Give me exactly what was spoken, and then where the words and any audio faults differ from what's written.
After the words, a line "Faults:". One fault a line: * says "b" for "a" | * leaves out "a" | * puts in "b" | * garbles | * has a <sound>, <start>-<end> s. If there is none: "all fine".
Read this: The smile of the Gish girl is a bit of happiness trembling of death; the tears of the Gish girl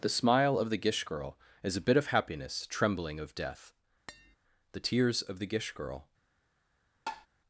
The smile of the Gish girl is a bit of happiness trembling of death; the tears of the Gish girl
Faults:
* has a tap, 4.1-4.4 s
* has a tap, 7.1-7.3 s